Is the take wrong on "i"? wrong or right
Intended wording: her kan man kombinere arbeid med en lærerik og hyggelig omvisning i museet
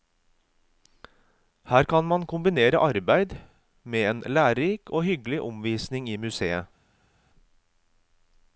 right